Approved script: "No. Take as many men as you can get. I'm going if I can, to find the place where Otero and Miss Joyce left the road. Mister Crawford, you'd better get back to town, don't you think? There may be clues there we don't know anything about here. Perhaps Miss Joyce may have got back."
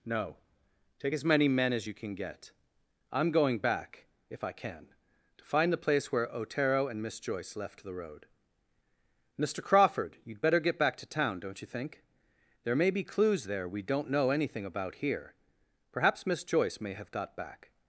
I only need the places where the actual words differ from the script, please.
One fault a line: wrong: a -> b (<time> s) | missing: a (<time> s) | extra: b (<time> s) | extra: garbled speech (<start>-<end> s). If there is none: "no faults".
extra: back (3.6 s)